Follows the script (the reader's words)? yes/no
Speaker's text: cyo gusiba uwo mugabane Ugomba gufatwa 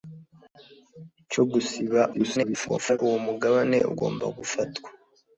no